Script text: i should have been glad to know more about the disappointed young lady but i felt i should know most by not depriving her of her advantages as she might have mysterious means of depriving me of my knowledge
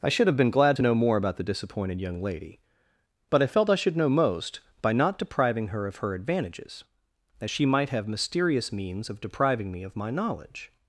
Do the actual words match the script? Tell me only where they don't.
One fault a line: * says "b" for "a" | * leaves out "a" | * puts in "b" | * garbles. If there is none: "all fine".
all fine